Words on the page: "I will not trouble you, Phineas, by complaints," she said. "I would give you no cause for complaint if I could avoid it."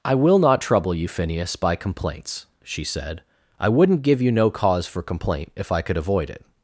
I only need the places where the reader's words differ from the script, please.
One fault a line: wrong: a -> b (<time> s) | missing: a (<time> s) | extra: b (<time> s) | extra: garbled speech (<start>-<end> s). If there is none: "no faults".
wrong: would -> wouldn't (3.7 s)